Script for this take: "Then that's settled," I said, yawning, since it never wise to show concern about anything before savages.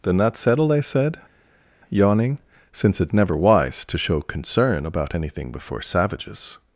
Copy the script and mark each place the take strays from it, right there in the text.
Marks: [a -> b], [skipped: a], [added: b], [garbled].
"Then that's settled," I said, yawning, since it never wise to show concern about anything before savages.